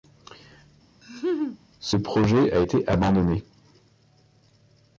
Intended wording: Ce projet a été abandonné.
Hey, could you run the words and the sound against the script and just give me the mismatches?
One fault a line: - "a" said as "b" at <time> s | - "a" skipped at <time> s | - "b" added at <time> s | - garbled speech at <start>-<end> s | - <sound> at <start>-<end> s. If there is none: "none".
- laugh at 1.0-1.6 s